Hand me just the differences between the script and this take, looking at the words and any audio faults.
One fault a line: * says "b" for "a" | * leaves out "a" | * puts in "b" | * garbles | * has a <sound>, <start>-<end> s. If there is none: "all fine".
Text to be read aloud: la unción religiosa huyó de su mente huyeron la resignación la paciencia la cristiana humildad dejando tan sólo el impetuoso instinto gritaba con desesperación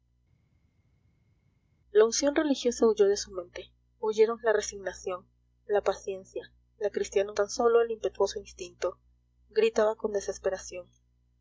* leaves out "humildad dejando"